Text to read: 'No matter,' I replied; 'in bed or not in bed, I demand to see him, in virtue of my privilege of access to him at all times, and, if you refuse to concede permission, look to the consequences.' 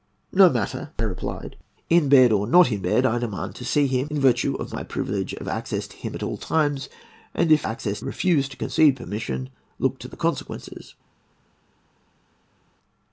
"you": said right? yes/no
no